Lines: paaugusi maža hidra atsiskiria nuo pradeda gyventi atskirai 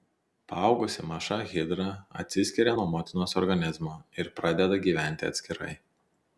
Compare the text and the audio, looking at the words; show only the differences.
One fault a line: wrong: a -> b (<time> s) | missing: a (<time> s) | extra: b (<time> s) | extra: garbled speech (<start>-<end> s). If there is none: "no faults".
extra: motinos organizmo ir (3.0 s)